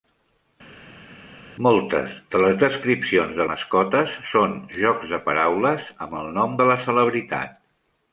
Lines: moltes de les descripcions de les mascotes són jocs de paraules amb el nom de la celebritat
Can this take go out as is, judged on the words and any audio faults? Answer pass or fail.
fail